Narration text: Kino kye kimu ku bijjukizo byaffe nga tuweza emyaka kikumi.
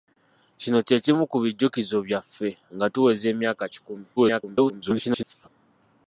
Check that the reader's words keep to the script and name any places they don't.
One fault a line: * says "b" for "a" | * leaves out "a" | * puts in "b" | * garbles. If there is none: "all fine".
* garbles